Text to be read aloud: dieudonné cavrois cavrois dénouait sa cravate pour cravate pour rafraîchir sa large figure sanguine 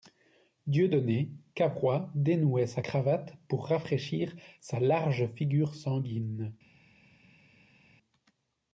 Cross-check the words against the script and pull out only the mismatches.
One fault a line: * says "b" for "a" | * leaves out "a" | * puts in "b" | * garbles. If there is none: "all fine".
* leaves out "cavrois"
* leaves out "cravate pour"